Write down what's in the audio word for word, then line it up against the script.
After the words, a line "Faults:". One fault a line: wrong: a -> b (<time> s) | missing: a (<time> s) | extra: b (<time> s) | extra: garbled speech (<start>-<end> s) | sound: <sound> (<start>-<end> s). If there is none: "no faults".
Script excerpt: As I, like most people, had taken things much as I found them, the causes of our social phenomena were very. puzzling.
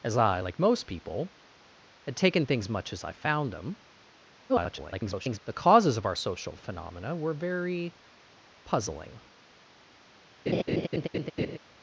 As I, like most people, had taken things much as I found them, [garbled] the causes of our social phenomena were very. puzzling.
Faults:
extra: garbled speech (4.5-5.4 s)
sound: laugh (10.5-11.6 s)